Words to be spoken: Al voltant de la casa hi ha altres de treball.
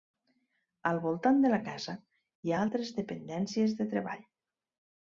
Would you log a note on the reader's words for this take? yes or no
yes